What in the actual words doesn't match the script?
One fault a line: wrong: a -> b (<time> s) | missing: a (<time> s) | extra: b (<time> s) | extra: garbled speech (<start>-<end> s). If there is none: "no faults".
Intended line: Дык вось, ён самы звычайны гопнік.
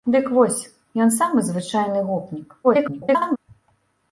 extra: garbled speech (2.6-3.4 s)